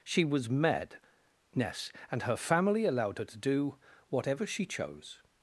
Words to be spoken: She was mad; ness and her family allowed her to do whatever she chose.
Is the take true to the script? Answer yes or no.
yes